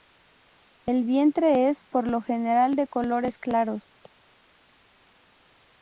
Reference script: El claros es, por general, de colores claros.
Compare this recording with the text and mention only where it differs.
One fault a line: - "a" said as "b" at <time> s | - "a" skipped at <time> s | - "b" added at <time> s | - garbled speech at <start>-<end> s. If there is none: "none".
- "claros" said as "vientre" at 1.0 s
- "lo" added at 2.1 s